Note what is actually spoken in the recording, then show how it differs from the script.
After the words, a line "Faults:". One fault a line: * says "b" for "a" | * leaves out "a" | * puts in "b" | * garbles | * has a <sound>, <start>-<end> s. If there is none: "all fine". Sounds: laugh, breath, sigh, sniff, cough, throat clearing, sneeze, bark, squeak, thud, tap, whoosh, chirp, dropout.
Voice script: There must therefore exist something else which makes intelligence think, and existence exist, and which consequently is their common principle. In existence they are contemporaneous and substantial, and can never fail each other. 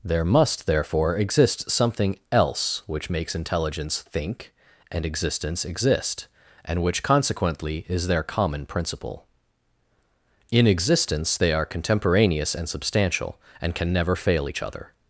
There must therefore exist something else which makes intelligence think, and existence exist, and which consequently is their common principle. In existence they are contemporaneous and substantial, and can never fail each other.
Faults:
all fine